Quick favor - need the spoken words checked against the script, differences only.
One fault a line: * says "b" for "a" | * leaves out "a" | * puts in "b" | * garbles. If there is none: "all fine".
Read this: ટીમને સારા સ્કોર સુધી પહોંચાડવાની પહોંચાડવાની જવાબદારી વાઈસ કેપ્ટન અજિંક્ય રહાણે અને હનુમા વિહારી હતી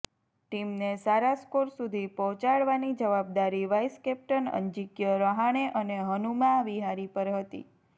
* leaves out "પહોંચાડવાની"
* puts in "પર"